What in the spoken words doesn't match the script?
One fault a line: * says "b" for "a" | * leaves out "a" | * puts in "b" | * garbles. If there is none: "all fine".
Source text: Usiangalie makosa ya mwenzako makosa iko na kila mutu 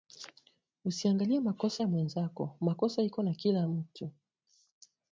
all fine